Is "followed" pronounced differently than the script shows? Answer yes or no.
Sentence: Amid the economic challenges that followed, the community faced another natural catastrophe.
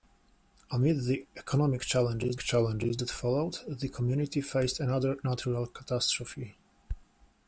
no